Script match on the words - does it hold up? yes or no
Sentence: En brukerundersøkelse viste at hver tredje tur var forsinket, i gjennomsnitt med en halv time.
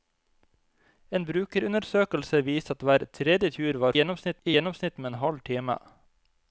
no